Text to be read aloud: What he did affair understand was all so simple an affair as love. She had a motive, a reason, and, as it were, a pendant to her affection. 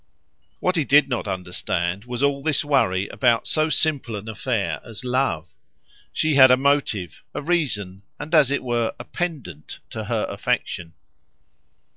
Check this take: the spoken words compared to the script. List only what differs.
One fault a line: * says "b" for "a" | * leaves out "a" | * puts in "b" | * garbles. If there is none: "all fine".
* says "not" for "affair"
* puts in "this worry about"